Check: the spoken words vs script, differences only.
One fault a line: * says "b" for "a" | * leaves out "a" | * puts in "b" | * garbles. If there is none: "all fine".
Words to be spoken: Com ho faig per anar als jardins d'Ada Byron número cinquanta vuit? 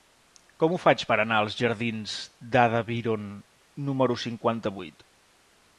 all fine